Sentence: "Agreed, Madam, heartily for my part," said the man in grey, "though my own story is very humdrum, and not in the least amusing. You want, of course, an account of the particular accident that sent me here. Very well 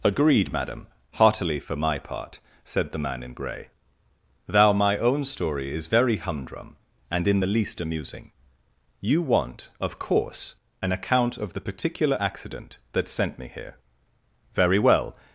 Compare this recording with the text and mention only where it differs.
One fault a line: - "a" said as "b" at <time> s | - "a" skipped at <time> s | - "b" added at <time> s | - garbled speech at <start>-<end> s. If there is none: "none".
- "though" said as "thou" at 4.5 s
- "not" skipped at 7.3 s